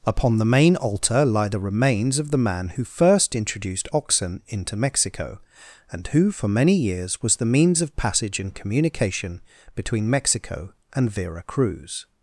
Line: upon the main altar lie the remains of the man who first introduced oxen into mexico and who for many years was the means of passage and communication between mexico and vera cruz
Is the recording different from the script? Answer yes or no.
no